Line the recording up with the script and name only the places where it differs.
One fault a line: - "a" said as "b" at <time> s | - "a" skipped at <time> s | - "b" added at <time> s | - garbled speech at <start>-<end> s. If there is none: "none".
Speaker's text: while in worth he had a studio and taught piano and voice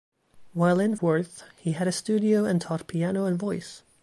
none